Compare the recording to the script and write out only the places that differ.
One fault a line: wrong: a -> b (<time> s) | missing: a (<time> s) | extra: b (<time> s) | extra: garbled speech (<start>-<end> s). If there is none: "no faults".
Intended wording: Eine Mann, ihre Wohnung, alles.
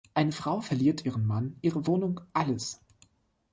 extra: Frau verliert ihren (0.3 s)